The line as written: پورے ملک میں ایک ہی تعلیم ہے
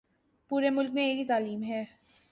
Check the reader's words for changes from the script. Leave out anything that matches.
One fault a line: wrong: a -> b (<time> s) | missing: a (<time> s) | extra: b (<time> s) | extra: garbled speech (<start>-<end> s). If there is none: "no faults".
no faults